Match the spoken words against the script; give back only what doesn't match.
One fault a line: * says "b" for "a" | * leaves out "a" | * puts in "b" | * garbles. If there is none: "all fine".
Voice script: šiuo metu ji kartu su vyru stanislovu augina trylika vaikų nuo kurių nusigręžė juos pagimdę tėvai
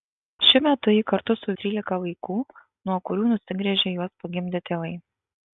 * leaves out "vyru stanislovu augina"